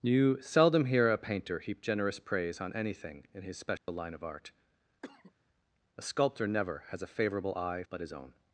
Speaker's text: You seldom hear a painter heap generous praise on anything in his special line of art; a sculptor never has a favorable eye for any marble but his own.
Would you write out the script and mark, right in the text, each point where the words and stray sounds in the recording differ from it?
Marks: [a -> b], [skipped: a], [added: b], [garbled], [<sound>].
You seldom hear a painter heap generous praise on anything in his special [dropout] line of art; [cough] a sculptor never has a favorable eye [skipped: for any marble] but his own.